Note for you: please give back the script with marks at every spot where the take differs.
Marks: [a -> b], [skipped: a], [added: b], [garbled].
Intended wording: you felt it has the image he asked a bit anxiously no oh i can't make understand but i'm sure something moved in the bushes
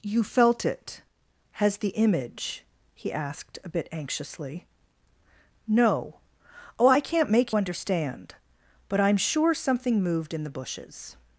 you felt it has the image he asked a bit anxiously no oh i can't make understand but i'm sure something moved in the bushes